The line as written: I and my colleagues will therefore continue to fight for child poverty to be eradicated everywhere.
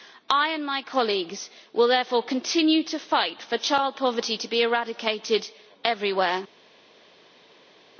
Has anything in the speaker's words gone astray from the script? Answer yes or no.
no